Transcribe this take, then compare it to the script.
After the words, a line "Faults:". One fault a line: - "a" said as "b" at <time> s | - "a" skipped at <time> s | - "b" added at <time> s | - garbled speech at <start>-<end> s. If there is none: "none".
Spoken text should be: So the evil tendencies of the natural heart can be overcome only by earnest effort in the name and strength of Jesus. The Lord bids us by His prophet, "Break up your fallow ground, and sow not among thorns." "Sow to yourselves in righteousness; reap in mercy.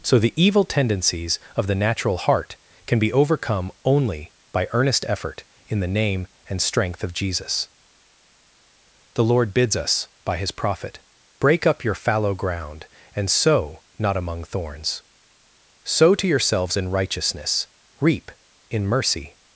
So the evil tendencies of the natural heart can be overcome only by earnest effort in the name and strength of Jesus. The Lord bids us by His prophet, "Break up your fallow ground, and sow not among thorns." "Sow to yourselves in righteousness; reap in mercy.
Faults:
none